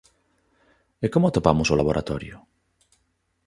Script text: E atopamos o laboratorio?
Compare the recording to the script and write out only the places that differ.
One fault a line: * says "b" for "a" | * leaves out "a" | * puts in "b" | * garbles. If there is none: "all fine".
* puts in "como"